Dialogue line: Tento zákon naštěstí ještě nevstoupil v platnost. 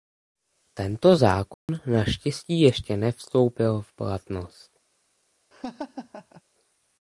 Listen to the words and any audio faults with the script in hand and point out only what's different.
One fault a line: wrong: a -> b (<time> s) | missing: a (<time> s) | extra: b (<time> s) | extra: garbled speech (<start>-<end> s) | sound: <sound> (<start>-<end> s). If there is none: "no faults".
sound: dropout (1.5-1.7 s)
sound: laugh (5.5-6.4 s)